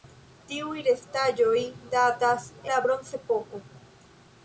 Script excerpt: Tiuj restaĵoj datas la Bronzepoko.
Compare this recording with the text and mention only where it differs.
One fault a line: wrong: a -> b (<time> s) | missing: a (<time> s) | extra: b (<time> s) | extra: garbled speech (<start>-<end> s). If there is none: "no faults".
no faults